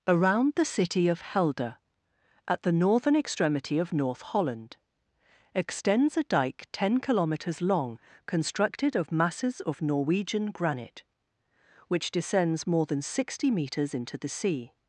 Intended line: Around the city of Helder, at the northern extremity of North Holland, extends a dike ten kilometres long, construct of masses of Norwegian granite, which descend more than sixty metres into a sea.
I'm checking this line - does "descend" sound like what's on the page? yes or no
no